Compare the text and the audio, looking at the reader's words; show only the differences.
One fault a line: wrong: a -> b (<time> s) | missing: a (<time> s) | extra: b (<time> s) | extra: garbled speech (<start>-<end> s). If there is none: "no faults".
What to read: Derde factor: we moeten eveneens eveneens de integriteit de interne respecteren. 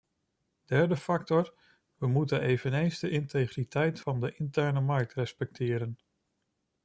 missing: eveneens (3.0 s)
extra: van (4.0 s)
extra: markt (4.8 s)